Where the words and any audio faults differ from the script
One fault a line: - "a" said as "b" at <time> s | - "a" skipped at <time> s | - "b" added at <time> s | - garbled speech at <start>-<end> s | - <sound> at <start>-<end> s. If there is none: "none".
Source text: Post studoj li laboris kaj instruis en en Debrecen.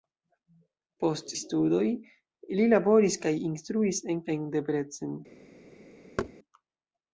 - thud at 6.2-6.3 s